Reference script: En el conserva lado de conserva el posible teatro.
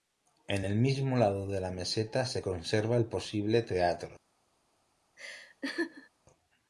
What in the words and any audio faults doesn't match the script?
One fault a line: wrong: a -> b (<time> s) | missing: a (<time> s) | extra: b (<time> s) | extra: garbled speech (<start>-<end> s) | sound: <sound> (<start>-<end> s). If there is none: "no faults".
wrong: conserva -> mismo (0.8 s)
extra: la meseta se (1.6 s)
sound: laugh (5.2-6.1 s)